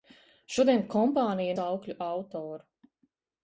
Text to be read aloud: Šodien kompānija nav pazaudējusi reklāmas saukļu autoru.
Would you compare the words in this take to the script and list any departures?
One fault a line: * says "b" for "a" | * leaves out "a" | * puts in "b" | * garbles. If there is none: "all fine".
* leaves out "nav pazaudējusi reklāmas"